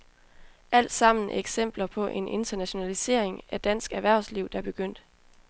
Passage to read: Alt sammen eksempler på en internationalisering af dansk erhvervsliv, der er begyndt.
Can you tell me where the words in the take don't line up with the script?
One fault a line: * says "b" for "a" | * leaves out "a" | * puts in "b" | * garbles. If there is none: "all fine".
all fine